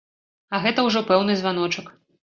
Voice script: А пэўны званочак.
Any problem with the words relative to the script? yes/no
yes